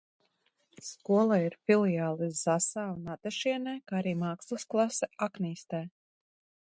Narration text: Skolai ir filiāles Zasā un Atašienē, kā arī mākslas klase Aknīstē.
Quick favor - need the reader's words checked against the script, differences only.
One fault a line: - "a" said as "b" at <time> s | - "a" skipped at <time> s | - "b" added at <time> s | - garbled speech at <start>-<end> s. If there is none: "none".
none